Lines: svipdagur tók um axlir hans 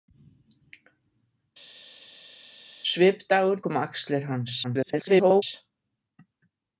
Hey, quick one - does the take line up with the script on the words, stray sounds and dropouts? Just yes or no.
no